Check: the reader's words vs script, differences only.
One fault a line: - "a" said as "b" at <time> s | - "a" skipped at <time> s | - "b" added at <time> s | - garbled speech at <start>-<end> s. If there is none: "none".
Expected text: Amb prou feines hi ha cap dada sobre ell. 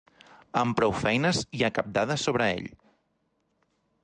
none